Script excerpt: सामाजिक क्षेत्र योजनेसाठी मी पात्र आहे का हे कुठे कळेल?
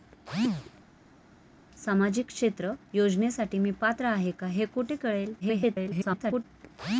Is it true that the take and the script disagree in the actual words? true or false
true